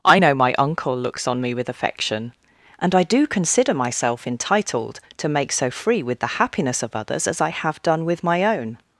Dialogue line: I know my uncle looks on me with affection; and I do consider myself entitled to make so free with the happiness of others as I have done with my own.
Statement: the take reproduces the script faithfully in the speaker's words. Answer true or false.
true